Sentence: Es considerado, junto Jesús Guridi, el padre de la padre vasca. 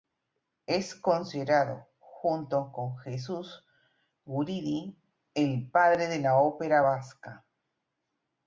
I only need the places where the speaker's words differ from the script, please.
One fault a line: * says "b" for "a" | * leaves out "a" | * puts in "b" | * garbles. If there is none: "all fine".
* puts in "con"
* says "ópera" for "padre"